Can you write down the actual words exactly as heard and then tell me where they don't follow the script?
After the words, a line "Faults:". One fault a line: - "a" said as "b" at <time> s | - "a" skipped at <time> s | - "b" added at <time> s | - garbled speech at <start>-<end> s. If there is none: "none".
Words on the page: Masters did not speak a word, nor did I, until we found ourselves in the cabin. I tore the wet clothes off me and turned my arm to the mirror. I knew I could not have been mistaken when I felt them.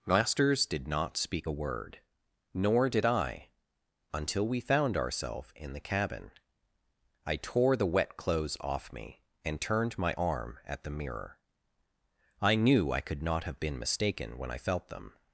Masters did not speak a word, nor did I, until we found ourselves in the cabin. I tore the wet clothes off me and turned my arm at the mirror. I knew I could not have been mistaken when I felt them.
Faults:
- "to" said as "at" at 10.6 s